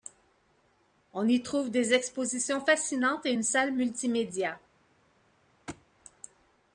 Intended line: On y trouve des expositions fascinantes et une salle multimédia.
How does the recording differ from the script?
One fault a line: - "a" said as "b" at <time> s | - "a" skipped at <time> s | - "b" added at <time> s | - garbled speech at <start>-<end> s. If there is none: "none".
none